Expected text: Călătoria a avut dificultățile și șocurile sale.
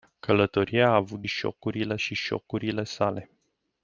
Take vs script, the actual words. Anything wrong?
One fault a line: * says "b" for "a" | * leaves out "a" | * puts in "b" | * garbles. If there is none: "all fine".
* says "șocurile" for "dificultățile"